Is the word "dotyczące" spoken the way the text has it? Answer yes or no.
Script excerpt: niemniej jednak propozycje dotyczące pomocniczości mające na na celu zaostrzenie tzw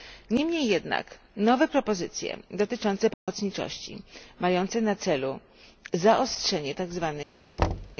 yes